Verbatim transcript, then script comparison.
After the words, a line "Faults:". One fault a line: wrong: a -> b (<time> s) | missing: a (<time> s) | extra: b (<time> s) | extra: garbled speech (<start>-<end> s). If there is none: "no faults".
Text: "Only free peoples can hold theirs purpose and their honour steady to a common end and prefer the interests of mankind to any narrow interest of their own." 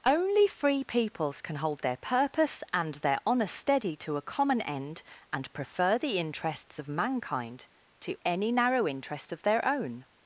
"Only free peoples can hold their purpose and their honour steady to a common end and prefer the interests of mankind to any narrow interest of their own."
Faults:
wrong: theirs -> their (1.8 s)